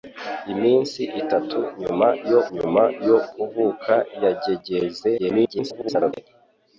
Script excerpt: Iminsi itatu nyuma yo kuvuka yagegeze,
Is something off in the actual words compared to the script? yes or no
yes